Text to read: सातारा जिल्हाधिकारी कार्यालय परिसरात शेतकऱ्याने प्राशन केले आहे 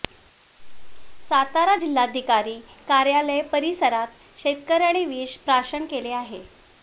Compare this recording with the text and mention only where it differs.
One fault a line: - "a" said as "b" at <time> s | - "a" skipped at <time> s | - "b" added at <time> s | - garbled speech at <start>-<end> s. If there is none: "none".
- "विष" added at 5.1 s